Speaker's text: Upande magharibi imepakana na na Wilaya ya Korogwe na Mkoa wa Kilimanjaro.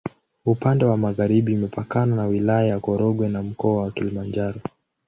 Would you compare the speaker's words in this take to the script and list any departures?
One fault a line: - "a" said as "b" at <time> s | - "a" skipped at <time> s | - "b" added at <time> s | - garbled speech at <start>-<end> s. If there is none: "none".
- "wa" added at 0.8 s
- "na" skipped at 2.2 s